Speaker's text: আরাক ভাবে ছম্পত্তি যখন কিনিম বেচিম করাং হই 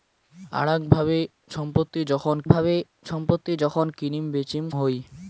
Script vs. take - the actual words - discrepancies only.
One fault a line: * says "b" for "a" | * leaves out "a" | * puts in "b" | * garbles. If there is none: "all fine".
* puts in "ভাবে ছম্পত্তি যখন"
* leaves out "করাং"